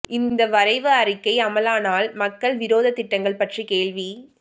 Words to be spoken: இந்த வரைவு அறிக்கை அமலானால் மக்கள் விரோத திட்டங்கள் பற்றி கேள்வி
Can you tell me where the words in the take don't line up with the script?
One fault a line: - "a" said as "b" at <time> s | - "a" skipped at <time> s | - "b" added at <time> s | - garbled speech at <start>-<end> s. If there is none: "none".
none